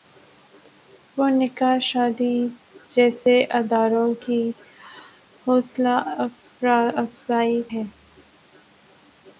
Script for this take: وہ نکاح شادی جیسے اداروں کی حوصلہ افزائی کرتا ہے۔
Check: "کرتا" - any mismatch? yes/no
yes